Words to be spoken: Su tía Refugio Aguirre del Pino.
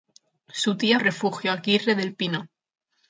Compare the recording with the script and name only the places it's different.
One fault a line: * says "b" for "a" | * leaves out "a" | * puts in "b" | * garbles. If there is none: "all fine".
all fine